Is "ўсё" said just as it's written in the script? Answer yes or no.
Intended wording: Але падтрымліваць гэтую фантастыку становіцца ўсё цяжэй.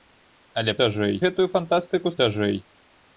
no